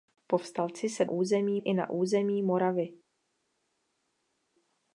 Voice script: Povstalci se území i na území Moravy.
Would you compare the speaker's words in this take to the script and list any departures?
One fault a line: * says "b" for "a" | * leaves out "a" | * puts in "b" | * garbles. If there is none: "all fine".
all fine